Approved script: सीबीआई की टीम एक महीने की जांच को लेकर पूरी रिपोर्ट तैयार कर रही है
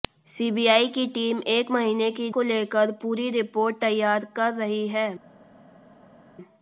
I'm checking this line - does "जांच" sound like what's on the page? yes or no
no